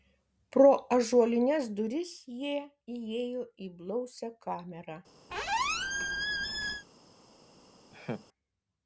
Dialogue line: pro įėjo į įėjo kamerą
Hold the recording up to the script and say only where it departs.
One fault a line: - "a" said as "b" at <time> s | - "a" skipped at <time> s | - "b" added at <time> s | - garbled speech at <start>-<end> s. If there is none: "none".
- "ąžuolines duris jie" added at 0.9 s
- "įėjo" said as "blausią" at 3.8 s